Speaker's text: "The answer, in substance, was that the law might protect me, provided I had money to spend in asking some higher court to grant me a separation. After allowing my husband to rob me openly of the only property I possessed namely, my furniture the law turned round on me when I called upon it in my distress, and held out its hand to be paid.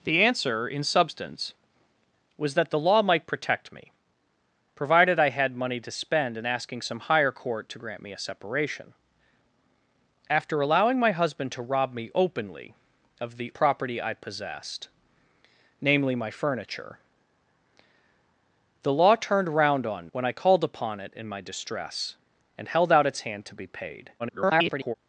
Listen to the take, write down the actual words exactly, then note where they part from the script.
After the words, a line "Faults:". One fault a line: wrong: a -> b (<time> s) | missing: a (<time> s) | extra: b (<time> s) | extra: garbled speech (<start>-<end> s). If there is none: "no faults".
"The answer, in substance, was that the law might protect me, provided I had money to spend in asking some higher court to grant me a separation. After allowing my husband to rob me openly of the property I possessed namely, my furniture the law turned round on when I called upon it in my distress, and held out its hand to be paid. [garbled]
Faults:
missing: only (13.5 s)
missing: me (20.1 s)
extra: garbled speech (24.2-24.9 s)